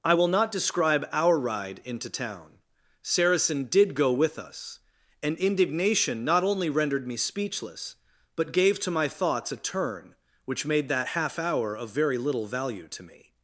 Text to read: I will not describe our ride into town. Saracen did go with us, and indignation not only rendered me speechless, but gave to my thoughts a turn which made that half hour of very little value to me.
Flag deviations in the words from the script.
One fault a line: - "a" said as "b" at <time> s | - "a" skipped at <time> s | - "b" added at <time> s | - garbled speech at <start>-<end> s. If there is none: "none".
none